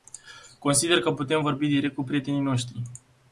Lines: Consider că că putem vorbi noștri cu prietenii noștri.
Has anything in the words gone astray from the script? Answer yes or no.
yes